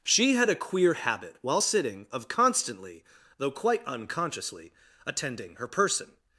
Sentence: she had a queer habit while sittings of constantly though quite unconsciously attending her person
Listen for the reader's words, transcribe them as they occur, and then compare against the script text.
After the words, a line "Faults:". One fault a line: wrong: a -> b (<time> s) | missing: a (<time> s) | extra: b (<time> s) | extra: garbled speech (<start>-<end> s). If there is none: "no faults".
she had a queer habit while sitting of constantly though quite unconsciously attending her person
Faults:
wrong: sittings -> sitting (1.6 s)